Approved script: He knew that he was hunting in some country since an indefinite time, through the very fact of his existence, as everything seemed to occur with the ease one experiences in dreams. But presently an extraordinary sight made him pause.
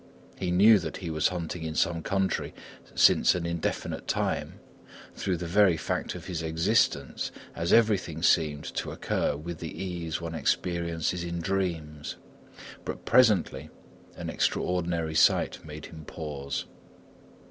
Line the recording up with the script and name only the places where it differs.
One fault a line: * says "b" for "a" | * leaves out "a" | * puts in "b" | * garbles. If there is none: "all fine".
all fine